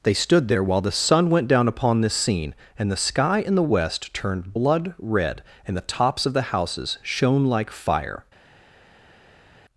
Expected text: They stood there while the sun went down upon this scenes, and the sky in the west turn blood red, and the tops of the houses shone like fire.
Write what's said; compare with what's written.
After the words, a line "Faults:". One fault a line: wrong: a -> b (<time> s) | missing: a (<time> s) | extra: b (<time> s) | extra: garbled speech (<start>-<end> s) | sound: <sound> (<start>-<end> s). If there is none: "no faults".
They stood there while the sun went down upon this scene, and the sky in the west turned blood red, and the tops of the houses shone like fire.
Faults:
wrong: scenes -> scene (2.1 s)
wrong: turn -> turned (4.2 s)